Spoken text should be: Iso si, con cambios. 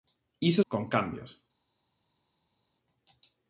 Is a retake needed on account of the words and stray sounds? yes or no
yes